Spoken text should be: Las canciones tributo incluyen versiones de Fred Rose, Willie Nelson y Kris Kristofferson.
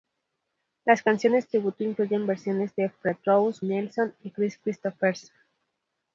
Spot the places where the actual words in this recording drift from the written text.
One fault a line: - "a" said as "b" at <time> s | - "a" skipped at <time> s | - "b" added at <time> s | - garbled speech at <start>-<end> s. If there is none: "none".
- "Willie" skipped at 3.6 s